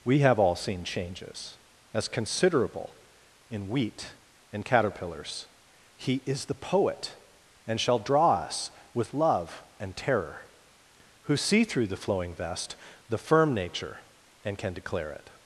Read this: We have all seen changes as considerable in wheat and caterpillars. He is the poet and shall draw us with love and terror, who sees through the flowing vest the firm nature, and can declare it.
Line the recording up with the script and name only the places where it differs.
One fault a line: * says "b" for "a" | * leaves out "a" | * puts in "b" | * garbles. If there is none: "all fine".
* says "see" for "sees"